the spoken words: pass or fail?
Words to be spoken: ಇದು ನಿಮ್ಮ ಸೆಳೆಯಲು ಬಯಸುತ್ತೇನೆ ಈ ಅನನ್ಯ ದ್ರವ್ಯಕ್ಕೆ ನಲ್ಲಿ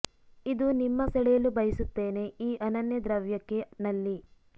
pass